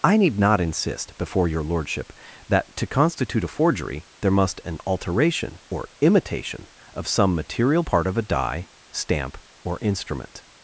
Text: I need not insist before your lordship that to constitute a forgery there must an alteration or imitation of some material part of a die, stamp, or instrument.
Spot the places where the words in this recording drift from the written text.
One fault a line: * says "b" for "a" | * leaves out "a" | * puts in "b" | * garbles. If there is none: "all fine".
all fine